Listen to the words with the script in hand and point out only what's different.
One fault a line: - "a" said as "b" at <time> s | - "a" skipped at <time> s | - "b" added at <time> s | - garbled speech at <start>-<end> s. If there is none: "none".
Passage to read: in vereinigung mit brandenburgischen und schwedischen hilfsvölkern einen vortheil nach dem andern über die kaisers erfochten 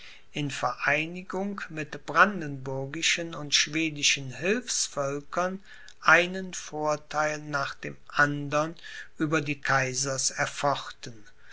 none